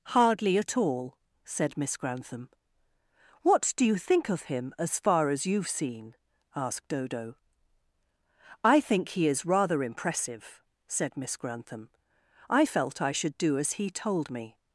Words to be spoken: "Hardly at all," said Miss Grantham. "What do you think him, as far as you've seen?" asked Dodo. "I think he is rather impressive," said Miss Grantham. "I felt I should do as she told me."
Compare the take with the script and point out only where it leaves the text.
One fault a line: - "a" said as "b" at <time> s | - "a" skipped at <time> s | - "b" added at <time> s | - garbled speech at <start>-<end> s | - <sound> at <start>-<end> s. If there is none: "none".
- "of" added at 4.3 s
- "she" said as "he" at 13.7 s